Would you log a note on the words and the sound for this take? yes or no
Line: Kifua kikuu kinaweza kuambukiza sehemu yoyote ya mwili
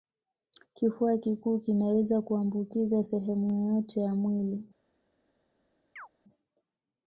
yes